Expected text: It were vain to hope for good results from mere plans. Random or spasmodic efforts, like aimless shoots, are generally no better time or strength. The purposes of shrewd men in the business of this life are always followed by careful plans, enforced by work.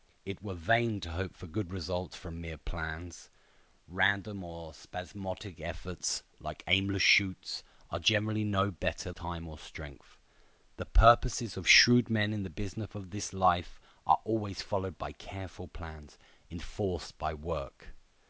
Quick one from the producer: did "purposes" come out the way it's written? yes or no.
yes